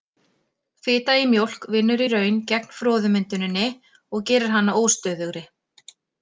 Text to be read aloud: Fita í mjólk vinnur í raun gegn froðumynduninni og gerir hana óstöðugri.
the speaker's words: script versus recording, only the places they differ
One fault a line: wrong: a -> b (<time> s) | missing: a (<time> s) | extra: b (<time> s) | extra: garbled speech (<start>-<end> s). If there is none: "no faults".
no faults